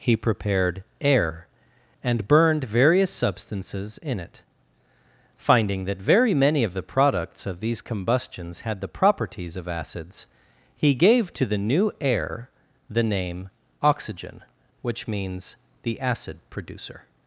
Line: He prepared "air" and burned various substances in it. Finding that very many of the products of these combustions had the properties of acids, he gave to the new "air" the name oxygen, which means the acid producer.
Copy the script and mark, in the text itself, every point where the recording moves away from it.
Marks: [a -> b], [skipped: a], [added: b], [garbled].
He prepared "air" and burned various substances in it. Finding that very many of the products of these combustions had the properties of acids, he gave to the new "air" the name oxygen, which means the acid producer.